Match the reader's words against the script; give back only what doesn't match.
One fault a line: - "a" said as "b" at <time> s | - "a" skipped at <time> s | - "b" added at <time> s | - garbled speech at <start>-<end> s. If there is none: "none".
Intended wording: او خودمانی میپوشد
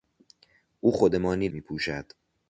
none